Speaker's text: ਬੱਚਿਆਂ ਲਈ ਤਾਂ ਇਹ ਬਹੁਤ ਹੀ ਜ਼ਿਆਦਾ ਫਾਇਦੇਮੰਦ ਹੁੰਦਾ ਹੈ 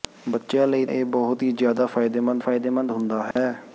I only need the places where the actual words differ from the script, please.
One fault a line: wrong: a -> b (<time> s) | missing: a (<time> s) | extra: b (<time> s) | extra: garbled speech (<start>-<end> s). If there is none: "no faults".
missing: ਤਾਂ (0.8 s)
extra: ਫਾਇਦੇਮੰਦ (2.4 s)